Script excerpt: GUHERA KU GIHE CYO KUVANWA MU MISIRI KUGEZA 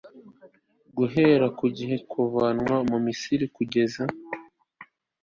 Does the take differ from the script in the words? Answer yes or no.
yes